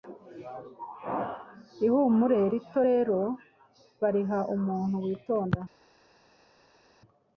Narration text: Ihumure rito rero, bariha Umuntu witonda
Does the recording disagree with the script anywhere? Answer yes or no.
no